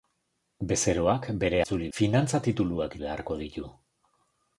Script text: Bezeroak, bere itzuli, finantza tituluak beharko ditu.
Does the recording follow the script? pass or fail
pass